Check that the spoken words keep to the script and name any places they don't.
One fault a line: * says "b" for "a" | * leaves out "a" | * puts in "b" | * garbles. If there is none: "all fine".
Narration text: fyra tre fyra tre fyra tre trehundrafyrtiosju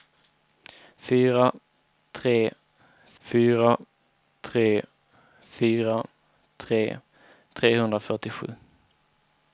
all fine